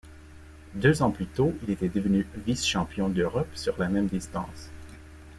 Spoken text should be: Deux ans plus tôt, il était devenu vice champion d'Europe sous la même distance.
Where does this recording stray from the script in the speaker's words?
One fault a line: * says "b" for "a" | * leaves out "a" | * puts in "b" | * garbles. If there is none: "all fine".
* says "sur" for "sous"